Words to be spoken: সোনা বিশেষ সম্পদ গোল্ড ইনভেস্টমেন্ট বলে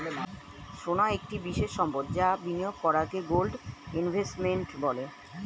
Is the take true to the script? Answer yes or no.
no